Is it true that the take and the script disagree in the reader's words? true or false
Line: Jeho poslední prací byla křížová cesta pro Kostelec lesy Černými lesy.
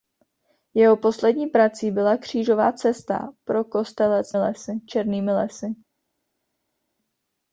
false